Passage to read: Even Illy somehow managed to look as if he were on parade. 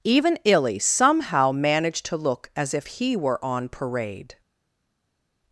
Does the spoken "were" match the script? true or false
true